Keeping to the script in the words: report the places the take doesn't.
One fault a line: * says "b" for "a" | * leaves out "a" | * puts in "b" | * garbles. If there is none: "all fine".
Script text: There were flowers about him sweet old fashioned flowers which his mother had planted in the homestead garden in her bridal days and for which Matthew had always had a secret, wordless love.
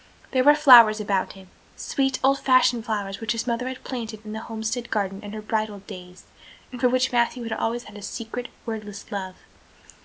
all fine